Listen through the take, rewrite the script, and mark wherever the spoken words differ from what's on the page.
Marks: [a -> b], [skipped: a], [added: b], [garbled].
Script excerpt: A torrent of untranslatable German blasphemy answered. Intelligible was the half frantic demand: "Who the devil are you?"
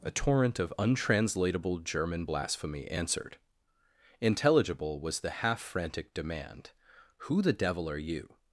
A torrent of untranslatable German blasphemy answered. Intelligible was the half frantic demand: "Who the devil are you?"